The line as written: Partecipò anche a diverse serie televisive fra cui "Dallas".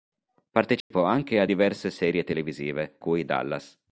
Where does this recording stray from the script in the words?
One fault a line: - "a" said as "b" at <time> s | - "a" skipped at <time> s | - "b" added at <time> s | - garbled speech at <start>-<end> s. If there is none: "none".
- "fra" skipped at 3.0 s